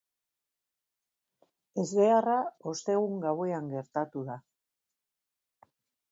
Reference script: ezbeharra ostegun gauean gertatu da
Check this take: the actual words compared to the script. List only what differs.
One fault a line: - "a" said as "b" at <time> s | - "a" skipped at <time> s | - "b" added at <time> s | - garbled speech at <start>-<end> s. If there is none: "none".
none